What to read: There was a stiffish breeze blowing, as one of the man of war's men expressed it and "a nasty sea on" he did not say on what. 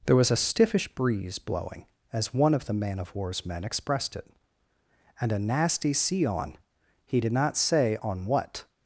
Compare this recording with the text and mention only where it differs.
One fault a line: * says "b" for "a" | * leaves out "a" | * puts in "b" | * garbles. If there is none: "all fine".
all fine